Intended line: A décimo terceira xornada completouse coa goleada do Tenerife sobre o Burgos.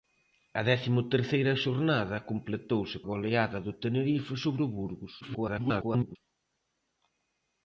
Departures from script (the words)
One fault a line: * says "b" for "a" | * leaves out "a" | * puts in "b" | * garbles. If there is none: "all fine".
* leaves out "coa"
* garbles